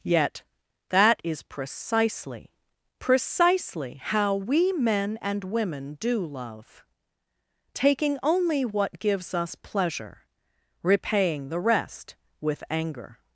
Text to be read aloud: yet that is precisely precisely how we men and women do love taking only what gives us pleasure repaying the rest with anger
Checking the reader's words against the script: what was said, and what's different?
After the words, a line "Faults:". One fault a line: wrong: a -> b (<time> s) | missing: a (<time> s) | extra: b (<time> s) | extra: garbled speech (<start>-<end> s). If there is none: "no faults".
yet that is precisely precisely how we men and women do love taking only what gives us pleasure repaying the rest with anger
Faults:
no faults